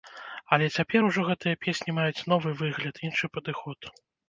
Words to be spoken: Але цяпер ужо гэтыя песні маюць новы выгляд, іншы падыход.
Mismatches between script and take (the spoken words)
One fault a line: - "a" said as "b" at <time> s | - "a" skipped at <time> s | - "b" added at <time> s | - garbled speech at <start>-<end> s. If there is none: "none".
none